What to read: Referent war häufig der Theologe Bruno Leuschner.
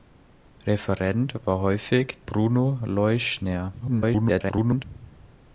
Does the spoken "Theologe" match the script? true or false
false